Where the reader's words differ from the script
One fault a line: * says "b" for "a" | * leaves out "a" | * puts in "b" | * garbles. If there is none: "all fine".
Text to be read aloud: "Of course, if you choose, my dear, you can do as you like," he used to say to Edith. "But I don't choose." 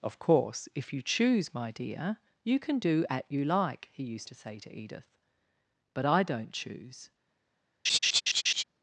* says "at" for "as"